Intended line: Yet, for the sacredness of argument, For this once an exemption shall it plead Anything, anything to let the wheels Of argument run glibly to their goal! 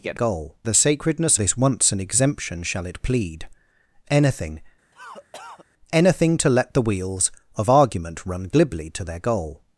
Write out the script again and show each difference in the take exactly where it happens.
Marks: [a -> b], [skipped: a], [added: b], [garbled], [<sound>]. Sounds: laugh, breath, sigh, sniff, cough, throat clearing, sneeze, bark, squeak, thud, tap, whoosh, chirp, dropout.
Yet, [for -> goal] the sacredness [skipped: of argument, For] this once an exemption shall it plead Anything, [cough] anything to let the wheels Of argument run glibly to their goal!